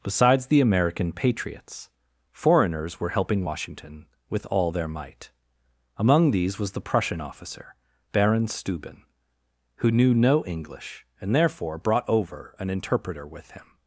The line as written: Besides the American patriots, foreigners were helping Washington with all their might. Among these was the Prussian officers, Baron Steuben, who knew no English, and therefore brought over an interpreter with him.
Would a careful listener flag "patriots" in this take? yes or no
no